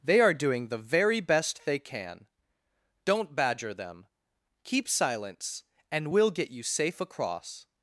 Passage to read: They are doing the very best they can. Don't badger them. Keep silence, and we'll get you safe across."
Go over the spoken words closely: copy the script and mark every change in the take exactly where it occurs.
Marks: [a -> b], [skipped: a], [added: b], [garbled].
They are doing the very best they can. Don't badger them. Keep silence, and we'll get you safe across."